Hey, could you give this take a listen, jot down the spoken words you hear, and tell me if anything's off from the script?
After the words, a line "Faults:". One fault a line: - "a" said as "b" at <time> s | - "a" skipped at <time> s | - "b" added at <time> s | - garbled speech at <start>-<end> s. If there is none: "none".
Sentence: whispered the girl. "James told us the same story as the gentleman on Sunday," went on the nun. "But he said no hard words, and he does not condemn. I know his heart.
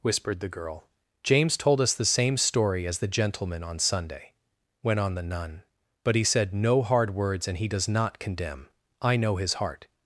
whispered the girl. "James told us the same story as the gentleman on Sunday," went on the nun. "But he said no hard words, and he does not condemn. I know his heart.
Faults:
none